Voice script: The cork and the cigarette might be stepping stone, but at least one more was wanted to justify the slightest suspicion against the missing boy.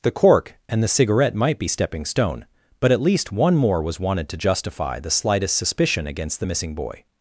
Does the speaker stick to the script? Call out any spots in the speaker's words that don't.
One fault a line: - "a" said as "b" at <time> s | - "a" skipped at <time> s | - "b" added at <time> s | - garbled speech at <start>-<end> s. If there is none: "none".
none